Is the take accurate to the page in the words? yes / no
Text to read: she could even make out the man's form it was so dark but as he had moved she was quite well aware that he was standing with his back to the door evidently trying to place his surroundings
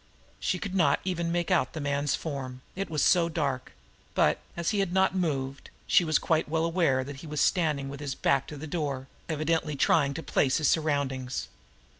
no